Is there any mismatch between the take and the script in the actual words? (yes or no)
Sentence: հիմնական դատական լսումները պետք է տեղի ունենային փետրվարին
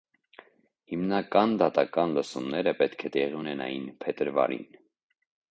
no